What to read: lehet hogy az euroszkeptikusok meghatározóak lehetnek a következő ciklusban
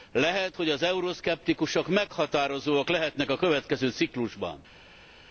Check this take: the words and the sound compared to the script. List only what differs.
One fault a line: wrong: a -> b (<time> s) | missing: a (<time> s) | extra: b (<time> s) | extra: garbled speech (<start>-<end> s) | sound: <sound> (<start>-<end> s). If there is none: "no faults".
no faults